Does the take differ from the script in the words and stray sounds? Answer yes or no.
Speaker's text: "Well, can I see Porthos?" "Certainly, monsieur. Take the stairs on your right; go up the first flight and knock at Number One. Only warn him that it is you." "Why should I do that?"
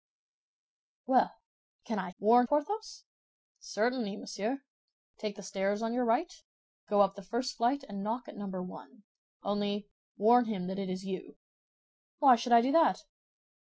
yes